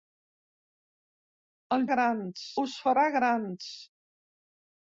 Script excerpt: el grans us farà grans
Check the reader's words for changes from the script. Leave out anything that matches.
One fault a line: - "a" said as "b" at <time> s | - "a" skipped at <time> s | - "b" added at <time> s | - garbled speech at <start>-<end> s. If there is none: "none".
none